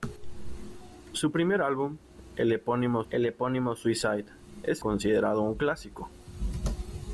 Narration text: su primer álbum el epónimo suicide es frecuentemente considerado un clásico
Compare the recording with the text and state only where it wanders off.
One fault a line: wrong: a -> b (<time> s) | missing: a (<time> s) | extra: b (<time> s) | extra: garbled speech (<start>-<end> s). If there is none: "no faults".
extra: el epónimo (3.1 s)
missing: frecuentemente (4.8 s)